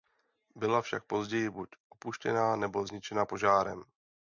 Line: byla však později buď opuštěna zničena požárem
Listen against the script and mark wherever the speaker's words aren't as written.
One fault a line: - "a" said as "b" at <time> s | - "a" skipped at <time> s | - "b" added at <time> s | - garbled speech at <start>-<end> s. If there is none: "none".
- "nebo" added at 2.5 s